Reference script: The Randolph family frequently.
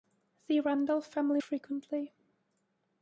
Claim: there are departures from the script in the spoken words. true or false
false